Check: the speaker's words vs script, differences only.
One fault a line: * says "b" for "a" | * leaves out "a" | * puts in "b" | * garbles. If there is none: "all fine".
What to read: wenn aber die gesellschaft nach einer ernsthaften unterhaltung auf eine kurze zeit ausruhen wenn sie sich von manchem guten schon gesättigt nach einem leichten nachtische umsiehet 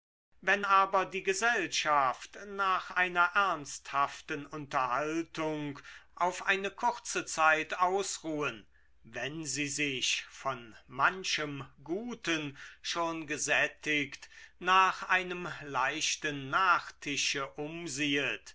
all fine